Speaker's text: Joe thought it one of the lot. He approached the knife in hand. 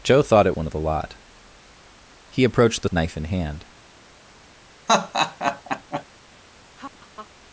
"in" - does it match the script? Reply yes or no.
yes